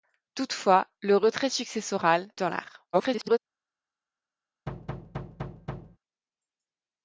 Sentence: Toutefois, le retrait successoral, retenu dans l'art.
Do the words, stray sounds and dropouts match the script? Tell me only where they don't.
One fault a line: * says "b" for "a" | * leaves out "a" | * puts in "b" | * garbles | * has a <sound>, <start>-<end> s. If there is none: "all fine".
* leaves out "retenu"
* garbles
* has a thud, 4.7-6.0 s